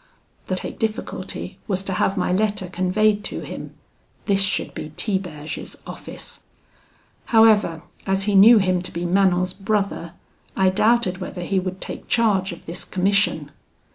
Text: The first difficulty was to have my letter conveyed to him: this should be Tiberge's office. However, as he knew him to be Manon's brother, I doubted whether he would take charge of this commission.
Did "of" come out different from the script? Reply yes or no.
no